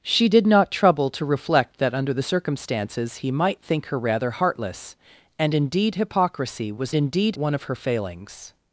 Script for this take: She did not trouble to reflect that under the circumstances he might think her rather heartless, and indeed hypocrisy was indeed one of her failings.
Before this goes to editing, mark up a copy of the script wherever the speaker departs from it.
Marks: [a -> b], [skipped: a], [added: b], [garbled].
She did not trouble to reflect that under the circumstances he might think her rather heartless, and indeed hypocrisy was indeed one of her failings.